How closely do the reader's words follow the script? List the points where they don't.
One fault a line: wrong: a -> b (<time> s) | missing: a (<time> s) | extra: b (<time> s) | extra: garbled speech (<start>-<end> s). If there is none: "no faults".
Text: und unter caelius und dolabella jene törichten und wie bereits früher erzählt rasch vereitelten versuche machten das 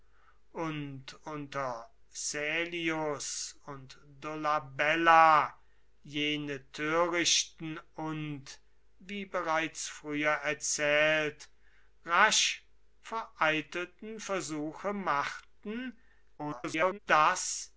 extra: garbled speech (16.4-17.0 s)